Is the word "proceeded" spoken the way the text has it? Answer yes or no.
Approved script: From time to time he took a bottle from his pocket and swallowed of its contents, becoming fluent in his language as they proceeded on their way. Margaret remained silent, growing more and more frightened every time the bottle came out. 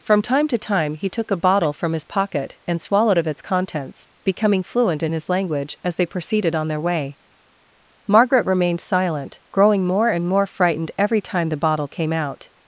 yes